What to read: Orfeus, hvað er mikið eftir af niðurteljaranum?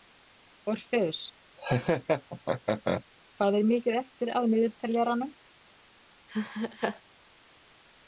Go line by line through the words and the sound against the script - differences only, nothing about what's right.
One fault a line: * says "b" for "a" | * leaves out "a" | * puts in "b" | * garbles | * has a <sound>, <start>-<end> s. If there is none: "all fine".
* has a laugh, 1.6-3.0 s
* has a laugh, 6.3-7.0 s